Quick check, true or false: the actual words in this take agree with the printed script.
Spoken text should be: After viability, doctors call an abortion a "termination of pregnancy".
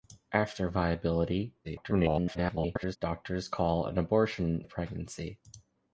false